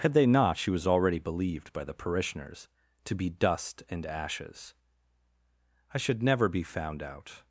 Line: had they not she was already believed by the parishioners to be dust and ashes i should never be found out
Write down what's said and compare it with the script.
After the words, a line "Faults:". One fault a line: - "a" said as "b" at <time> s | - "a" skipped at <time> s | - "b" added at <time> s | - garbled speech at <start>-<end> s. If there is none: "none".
had they not she was already believed by the parishioners to be dust and ashes i should never be found out
Faults:
none